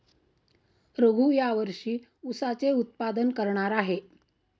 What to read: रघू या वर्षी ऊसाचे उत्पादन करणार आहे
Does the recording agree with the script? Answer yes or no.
yes